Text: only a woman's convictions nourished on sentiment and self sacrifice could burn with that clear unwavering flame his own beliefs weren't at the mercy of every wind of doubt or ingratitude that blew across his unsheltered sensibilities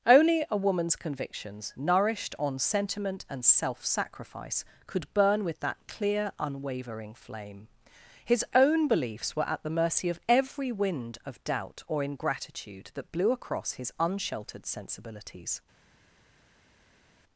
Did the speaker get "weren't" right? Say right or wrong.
wrong